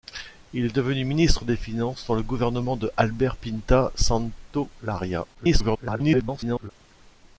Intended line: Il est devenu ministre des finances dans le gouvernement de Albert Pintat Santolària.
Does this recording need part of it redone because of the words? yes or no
yes